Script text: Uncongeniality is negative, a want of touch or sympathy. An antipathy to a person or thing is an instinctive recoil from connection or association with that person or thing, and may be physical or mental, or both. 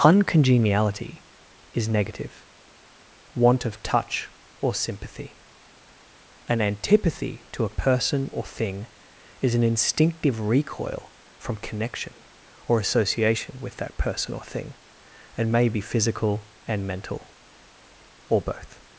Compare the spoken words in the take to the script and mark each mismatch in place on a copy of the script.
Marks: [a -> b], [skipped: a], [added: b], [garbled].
Uncongeniality is negative, [skipped: a] want of touch or sympathy. An antipathy to a person or thing is an instinctive recoil from connection or association with that person or thing, and may be physical [or -> and] mental, or both.